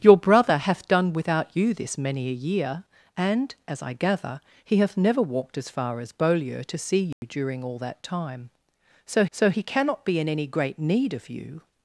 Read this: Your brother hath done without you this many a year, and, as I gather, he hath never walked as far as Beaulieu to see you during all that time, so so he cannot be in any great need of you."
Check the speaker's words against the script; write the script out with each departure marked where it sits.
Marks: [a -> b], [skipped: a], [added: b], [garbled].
Your brother hath done without you this many a year, and, as I gather, he hath never walked as far as Beaulieu to see you during all that time, so so he cannot be in any great need of you."